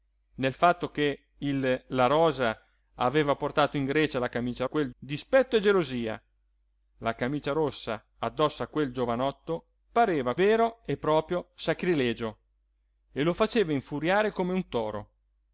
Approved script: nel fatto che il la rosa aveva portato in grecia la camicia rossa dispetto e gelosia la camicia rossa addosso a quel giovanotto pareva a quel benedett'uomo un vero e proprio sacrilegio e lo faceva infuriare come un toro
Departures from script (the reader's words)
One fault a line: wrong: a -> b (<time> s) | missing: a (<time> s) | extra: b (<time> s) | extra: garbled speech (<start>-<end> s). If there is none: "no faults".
wrong: rossa -> quel (4.7 s)
missing: quel benedett'uomo un (10.3 s)